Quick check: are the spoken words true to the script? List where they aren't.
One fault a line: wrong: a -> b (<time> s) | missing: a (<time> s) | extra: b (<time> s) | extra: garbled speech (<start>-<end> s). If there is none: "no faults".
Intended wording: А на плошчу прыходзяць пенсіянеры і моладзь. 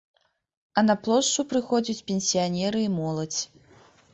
no faults